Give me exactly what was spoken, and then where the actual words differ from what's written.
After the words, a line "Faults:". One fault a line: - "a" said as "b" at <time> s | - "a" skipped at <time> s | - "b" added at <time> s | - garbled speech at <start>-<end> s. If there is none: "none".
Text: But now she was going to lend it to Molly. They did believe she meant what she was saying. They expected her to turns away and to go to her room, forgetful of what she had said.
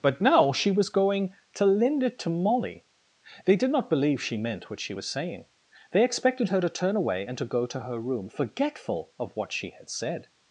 But now she was going to lend it to Molly. They did not believe she meant what she was saying. They expected her to turn away and to go to her room, forgetful of what she had said.
Faults:
- "not" added at 3.7 s
- "turns" said as "turn" at 6.7 s